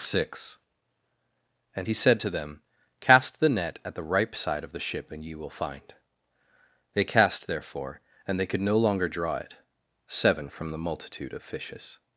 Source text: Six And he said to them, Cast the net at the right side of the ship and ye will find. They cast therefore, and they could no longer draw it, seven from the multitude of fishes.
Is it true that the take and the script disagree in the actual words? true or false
true